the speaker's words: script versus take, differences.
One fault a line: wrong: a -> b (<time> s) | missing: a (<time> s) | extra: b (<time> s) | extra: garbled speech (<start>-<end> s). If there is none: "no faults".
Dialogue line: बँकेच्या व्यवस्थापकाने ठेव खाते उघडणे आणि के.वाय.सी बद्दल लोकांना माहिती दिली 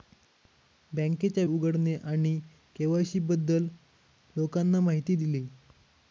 missing: व्यवस्थापकाने ठेव खाते (1.4 s)